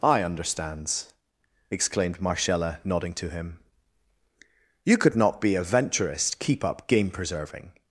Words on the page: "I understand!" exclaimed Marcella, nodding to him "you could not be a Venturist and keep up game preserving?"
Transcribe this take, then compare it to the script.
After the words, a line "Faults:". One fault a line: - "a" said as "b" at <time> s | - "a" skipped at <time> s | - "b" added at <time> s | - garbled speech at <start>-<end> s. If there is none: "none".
"I understands!" exclaimed Marcella, nodding to him "you could not be a Venturist keep up game preserving?"
Faults:
- "understand" said as "understands" at 0.2 s
- "and" skipped at 6.4 s